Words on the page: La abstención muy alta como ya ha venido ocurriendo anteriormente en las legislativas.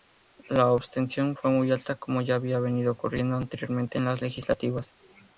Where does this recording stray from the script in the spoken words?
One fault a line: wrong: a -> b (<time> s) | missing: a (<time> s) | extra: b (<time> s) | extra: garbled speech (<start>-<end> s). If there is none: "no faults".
extra: fue (1.3 s)
wrong: ha -> había (2.4 s)